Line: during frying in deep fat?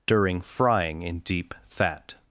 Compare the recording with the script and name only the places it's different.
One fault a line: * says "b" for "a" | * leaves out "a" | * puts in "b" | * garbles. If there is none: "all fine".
all fine